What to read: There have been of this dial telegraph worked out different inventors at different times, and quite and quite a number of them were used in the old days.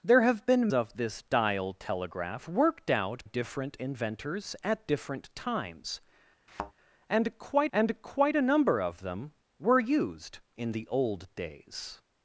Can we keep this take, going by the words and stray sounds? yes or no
no